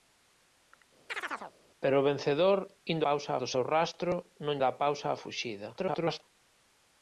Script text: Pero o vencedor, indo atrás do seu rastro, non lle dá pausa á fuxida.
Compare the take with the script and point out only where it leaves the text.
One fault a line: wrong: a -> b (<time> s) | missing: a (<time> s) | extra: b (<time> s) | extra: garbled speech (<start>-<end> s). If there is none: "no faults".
wrong: atrás -> pausa (3.1 s)
missing: lle (4.6 s)
extra: garbled speech (5.8-6.2 s)